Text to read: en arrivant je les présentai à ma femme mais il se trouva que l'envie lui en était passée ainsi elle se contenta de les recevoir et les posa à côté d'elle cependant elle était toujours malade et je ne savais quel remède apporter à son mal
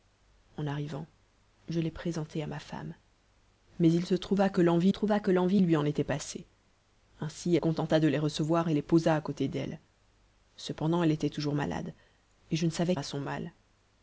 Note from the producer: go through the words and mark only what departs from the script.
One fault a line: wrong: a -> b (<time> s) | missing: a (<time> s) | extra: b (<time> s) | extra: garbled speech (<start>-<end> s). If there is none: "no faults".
extra: trouva que l'envie (4.9 s)
missing: elle se (7.6 s)
missing: quel remède apporter (12.9 s)